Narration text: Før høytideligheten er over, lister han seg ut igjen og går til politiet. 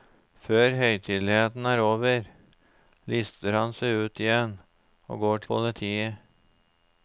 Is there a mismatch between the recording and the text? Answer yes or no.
yes